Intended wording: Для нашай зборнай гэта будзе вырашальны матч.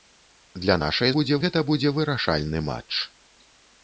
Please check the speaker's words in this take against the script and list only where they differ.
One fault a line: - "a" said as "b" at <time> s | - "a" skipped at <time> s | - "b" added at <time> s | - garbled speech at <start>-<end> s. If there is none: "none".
- "зборнай" said as "будзе" at 1.2 s